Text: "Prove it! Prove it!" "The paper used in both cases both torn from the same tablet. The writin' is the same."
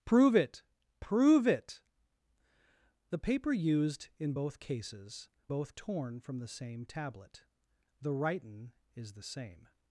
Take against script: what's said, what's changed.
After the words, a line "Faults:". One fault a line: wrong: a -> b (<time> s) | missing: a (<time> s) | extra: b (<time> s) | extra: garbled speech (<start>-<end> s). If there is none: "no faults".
"Prove it! Prove it!" "The paper used in both cases both torn from the same tablet. The writin' is the same."
Faults:
no faults